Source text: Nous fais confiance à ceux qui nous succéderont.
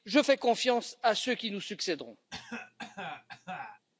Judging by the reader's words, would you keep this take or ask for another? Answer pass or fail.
fail